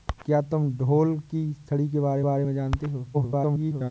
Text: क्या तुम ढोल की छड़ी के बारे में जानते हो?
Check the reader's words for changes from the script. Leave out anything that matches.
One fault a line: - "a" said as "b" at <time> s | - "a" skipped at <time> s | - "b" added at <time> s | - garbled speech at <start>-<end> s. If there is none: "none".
- "बारे" added at 2.2 s
- garbled speech at 3.1-3.9 s